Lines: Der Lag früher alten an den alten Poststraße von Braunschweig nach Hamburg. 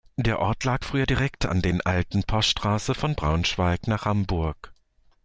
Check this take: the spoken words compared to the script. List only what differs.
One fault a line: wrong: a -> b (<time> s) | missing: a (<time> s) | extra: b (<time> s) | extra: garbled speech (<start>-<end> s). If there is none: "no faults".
extra: Ort (0.4 s)
wrong: alten -> direkt (1.1 s)